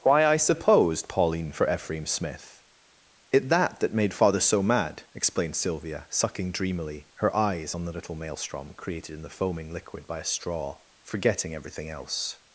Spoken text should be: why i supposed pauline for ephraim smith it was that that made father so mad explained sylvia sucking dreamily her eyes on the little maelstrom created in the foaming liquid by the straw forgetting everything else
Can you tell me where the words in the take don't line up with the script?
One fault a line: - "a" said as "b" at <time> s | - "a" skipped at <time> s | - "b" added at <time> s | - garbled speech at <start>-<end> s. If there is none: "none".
- "was" skipped at 3.5 s
- "the" said as "a" at 10.2 s